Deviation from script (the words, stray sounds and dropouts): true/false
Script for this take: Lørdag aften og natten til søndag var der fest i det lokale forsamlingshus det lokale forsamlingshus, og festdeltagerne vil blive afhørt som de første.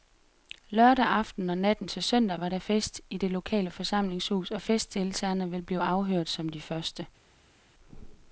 true